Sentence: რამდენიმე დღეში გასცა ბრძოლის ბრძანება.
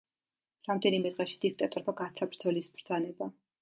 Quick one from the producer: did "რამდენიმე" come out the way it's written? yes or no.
yes